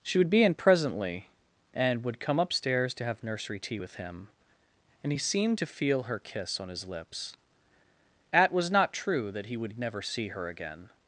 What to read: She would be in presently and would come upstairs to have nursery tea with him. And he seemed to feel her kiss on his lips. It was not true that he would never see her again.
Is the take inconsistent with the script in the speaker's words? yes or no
yes